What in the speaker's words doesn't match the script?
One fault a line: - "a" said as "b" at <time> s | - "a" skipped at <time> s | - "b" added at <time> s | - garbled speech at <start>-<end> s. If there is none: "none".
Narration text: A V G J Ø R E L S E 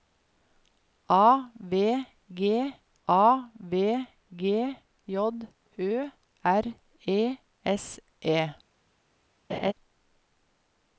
- "a V G" added at 3.1 s
- "L" skipped at 7.4 s